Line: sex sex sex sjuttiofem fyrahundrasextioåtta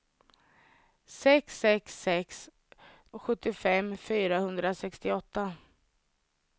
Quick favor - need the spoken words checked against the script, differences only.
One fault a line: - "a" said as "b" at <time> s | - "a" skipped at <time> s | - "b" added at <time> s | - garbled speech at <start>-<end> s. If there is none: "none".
none